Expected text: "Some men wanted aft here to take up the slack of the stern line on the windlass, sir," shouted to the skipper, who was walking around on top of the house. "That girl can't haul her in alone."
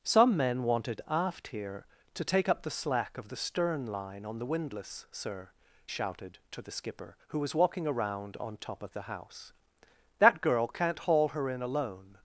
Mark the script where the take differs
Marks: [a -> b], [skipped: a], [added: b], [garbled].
"Some men wanted aft here to take up the slack of the stern line on the windlass, sir," shouted to the skipper, who was walking around on top of the house. "That girl can't haul her in alone."